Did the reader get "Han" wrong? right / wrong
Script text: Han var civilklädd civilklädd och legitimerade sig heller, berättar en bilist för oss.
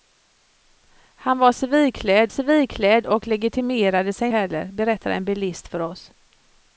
right